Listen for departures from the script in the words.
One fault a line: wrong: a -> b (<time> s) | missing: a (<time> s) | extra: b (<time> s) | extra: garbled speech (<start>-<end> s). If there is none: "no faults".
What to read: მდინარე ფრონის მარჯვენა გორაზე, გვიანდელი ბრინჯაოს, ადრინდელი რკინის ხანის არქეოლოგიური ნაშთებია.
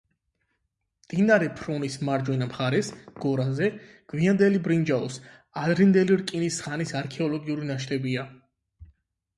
extra: მხარეს (2.5 s)